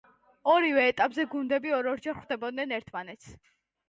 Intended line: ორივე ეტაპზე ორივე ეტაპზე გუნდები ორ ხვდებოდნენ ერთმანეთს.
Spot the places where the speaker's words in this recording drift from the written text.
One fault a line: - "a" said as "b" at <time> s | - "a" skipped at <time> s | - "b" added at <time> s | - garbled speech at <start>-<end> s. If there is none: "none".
- "ორივე ეტაპზე" skipped at 1.2 s
- "ორჯერ" added at 1.9 s